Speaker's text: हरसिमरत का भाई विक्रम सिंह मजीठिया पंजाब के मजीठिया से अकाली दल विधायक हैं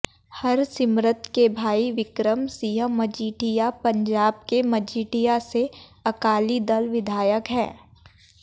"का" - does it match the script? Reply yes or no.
no